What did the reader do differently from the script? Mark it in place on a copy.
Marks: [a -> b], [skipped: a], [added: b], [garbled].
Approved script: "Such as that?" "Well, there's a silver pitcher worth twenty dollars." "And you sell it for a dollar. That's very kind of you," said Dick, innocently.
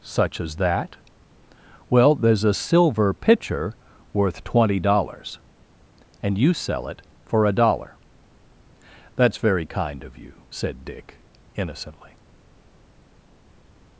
"Such as that?" "Well, there's a silver pitcher worth twenty dollars." "And you sell it for a dollar. That's very kind of you," said Dick, innocently.